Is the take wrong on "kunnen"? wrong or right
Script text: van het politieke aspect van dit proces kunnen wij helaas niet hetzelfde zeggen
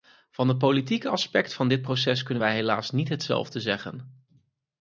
right